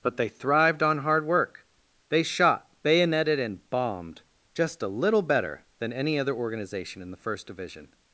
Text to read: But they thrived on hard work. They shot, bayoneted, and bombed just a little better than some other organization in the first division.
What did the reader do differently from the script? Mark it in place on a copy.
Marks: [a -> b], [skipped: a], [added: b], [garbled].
But they thrived on hard work. They shot, bayoneted, and bombed just a little better than [some -> any] other organization in the first division.